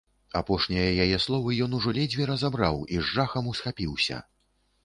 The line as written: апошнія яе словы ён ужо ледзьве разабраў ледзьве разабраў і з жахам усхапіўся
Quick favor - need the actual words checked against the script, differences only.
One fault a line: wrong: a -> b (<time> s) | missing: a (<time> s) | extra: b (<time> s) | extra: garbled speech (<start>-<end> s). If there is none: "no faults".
missing: ледзьве разабраў (2.8 s)